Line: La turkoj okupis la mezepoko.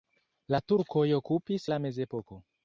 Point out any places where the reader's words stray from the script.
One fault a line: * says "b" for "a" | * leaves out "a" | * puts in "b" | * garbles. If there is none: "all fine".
all fine